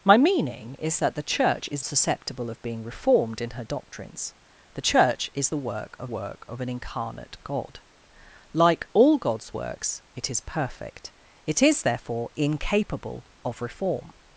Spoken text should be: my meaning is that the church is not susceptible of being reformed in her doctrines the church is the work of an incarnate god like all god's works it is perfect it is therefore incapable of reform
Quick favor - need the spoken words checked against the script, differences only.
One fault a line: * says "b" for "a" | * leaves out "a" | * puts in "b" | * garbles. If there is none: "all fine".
* leaves out "not"
* puts in "work of"